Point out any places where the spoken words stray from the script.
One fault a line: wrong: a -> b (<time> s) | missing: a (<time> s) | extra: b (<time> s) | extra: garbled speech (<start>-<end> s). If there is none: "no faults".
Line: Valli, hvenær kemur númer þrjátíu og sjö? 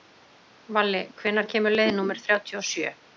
extra: leið (1.8 s)